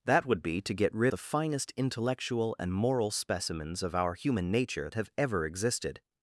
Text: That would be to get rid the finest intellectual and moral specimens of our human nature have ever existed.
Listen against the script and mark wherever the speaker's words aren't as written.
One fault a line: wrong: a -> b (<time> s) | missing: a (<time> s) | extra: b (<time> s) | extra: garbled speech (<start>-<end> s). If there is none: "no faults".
no faults